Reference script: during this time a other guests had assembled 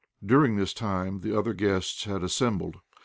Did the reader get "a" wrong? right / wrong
wrong